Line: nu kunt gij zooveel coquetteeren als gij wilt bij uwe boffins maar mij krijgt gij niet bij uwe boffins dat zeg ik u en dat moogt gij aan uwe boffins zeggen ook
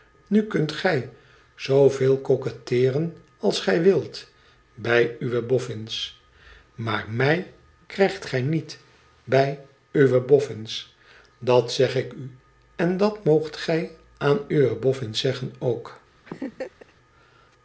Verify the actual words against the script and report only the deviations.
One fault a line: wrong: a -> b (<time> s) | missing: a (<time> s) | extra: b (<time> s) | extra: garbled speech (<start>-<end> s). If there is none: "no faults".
no faults